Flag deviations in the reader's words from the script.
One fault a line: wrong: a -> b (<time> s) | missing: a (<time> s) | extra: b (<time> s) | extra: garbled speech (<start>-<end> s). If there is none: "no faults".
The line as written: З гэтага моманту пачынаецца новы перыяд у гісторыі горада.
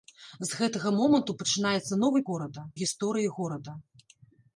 wrong: перыяд -> горада (2.3 s)